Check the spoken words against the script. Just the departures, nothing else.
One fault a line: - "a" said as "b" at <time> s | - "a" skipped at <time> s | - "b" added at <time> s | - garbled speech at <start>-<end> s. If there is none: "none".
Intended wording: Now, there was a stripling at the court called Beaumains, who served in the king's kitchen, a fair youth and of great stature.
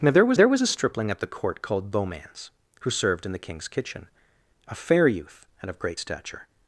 - "there was" added at 0.3 s